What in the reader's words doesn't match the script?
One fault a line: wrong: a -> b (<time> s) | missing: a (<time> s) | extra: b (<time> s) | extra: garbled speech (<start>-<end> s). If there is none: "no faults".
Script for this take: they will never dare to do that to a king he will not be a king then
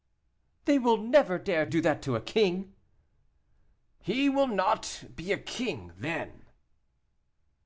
missing: to (1.7 s)